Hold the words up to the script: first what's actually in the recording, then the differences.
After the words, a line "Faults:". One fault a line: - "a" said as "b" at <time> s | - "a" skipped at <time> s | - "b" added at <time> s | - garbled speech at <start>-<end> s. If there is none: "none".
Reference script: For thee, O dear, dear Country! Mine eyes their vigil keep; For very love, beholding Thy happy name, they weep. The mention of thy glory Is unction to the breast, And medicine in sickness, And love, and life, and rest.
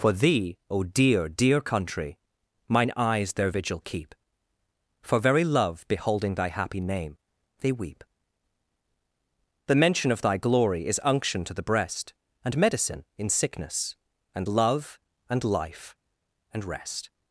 For thee, O dear, dear Country! Mine eyes their vigil keep; For very love, beholding Thy happy name, they weep. The mention of thy glory Is unction to the breast, And medicine in sickness, And love, and life, and rest.
Faults:
none